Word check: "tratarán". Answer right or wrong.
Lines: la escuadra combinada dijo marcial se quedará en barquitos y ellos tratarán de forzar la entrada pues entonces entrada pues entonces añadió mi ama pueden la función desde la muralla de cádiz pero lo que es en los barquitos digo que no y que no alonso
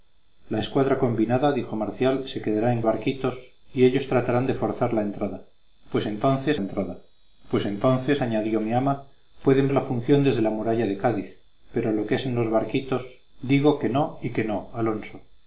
right